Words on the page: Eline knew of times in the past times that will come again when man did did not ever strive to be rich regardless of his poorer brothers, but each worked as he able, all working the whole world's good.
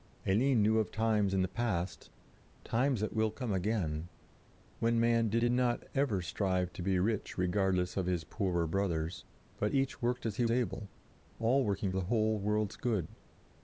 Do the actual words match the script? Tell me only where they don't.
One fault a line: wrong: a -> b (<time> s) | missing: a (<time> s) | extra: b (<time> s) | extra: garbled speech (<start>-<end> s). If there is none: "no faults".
no faults